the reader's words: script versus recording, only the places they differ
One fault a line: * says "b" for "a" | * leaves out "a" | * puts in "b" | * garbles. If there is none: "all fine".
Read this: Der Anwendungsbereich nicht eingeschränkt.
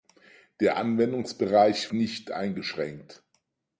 all fine